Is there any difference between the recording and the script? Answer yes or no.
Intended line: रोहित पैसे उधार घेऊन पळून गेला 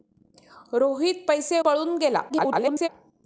yes